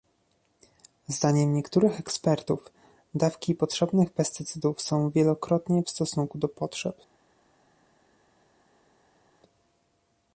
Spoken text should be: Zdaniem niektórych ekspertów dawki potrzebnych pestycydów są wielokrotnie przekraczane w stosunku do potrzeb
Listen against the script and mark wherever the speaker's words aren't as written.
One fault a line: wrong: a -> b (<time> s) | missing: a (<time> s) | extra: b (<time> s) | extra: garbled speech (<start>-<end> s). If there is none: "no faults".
missing: przekraczane (5.8 s)